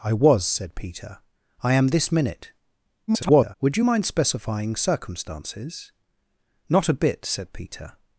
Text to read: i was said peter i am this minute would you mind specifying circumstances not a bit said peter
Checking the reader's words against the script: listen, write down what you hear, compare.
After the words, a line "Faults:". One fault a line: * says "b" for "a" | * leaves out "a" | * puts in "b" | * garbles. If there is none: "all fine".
i was said peter i am this minute [garbled] would you mind specifying circumstances not a bit said peter
Faults:
* garbles